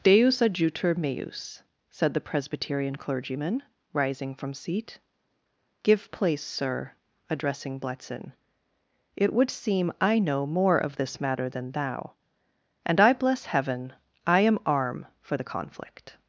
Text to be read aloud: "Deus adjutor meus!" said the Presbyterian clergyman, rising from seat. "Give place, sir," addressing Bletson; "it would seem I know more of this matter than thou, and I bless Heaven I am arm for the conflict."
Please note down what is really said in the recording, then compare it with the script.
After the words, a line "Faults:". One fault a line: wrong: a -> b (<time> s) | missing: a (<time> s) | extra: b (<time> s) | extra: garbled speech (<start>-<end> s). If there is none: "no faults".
"Deus adjutor meus!" said the Presbyterian clergyman, rising from seat. "Give place, sir," addressing Bletson; "it would seem I know more of this matter than thou, and I bless Heaven I am arm for the conflict."
Faults:
no faults